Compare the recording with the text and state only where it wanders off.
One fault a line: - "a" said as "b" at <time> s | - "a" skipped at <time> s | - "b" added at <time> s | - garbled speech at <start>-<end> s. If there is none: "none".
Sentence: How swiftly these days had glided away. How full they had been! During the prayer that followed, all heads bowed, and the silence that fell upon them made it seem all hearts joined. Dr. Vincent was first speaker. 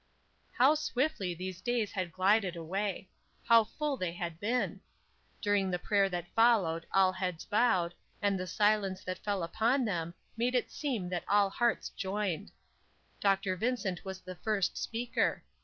- "that" added at 11.1 s
- "the" added at 14.2 s